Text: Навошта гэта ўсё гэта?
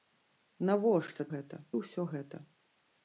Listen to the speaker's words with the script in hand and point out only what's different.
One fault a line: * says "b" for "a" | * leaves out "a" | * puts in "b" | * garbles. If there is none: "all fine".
all fine